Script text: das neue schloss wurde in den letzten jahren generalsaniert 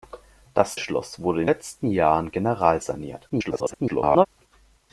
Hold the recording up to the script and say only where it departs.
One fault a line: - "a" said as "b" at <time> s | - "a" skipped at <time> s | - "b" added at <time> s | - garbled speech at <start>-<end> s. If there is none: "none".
- "neue" skipped at 0.8 s
- "den" skipped at 1.5 s
- garbled speech at 3.3-4.3 s